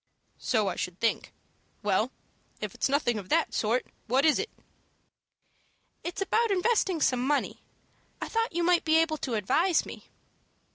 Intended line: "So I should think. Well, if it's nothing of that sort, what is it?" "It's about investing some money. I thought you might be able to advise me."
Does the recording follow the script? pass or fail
pass